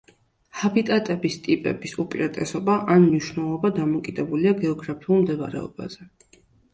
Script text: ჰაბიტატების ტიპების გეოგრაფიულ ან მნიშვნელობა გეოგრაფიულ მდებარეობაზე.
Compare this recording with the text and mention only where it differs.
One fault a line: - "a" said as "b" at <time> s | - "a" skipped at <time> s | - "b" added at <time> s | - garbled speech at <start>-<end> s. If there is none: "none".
- "გეოგრაფიულ" said as "უპირატესობა" at 2.0 s
- "დამოკიდებულია" added at 3.8 s